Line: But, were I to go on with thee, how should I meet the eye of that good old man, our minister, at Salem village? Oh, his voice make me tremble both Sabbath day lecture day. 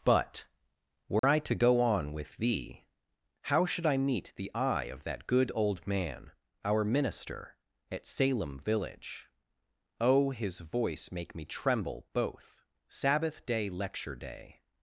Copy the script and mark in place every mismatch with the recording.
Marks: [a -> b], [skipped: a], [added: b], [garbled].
But, were I to go on with thee, how should I meet the eye of that good old man, our minister, at Salem village? Oh, his voice make me tremble both Sabbath day lecture day.